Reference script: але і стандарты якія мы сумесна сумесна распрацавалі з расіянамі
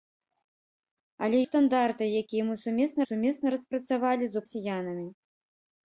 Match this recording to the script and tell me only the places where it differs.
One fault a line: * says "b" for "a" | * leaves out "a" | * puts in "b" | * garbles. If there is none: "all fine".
all fine